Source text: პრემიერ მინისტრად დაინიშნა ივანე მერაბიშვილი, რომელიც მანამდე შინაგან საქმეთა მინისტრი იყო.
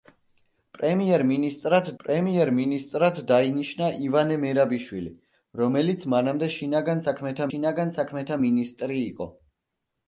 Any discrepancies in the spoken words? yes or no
yes